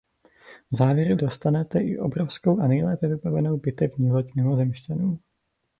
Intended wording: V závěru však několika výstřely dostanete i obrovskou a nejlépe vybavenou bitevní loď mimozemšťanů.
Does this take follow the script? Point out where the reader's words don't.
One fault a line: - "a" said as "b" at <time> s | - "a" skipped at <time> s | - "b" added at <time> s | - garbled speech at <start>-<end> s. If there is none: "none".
- "však několika výstřely" skipped at 1.2 s